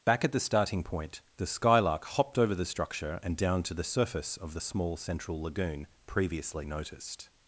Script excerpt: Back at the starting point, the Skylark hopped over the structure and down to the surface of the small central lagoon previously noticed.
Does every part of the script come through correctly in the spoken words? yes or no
yes